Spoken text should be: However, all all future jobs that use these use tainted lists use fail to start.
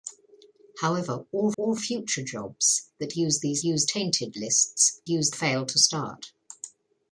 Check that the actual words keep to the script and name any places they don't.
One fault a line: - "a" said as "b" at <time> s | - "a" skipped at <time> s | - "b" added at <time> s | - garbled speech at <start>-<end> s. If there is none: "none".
none